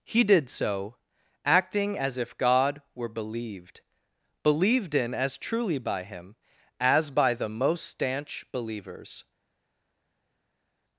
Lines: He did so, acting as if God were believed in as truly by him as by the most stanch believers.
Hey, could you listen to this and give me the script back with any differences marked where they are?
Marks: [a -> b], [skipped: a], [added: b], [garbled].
He did so, acting as if God were believed [added: believed] in as truly by him as by the most stanch believers.